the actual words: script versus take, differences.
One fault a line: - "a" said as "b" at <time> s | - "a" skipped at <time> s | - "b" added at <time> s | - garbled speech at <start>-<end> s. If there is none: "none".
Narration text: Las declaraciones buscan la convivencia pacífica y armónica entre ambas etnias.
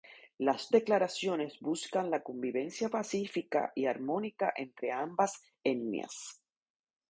none